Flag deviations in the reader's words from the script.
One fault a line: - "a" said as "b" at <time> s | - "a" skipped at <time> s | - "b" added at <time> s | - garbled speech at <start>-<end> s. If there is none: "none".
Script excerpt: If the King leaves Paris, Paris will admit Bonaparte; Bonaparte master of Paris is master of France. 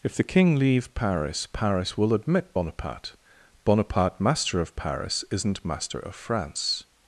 - "leaves" said as "leave" at 0.6 s
- "is" said as "isn't" at 5.3 s